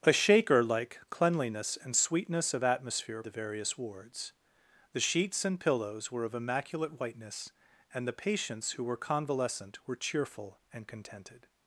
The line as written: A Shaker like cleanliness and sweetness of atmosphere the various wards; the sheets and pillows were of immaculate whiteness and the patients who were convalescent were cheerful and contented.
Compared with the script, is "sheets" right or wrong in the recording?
right